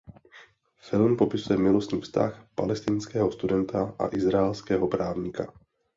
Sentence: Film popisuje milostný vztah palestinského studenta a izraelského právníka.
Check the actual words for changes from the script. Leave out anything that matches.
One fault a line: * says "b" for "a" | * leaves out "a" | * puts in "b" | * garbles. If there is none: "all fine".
all fine